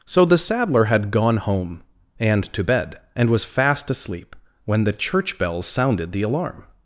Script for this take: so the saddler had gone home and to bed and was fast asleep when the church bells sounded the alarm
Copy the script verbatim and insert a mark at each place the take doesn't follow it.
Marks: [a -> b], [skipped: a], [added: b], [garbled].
so the saddler had gone home and to bed and was fast asleep when the church bells sounded the alarm